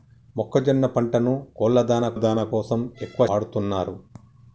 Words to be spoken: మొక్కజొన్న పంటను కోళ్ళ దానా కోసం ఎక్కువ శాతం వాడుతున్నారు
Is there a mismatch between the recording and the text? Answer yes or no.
yes